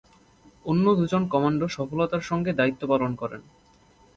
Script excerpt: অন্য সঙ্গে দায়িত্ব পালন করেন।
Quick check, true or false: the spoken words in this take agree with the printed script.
false